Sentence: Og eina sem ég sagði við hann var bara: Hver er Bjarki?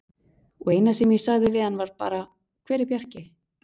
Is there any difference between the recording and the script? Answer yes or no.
no